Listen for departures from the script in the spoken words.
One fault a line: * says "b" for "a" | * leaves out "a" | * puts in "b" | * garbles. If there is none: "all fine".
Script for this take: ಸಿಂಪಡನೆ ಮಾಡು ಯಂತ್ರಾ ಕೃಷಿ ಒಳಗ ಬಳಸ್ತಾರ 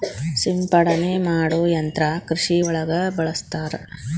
all fine